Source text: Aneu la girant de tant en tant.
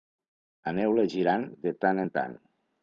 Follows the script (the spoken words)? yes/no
yes